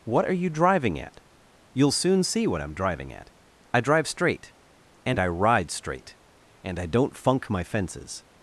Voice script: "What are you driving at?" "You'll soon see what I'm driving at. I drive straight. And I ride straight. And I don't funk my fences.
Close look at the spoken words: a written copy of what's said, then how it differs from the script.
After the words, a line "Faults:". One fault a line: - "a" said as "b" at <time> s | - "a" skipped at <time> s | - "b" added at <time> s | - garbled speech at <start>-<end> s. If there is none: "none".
"What are you driving at?" "You'll soon see what I'm driving at. I drive straight. And I ride straight. And I don't funk my fences.
Faults:
none